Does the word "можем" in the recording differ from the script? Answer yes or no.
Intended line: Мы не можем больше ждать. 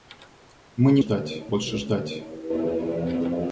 yes